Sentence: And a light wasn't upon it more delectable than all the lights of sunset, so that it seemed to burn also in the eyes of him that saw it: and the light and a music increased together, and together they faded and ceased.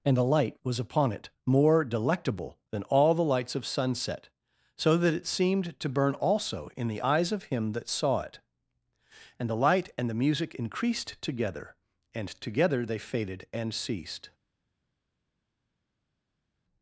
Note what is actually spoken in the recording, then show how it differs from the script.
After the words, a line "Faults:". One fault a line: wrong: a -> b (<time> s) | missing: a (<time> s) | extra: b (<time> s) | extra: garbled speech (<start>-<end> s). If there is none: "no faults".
And a light was upon it more delectable than all the lights of sunset, so that it seemed to burn also in the eyes of him that saw it: and the light and the music increased together, and together they faded and ceased.
Faults:
wrong: wasn't -> was (0.6 s)
wrong: a -> the (10.1 s)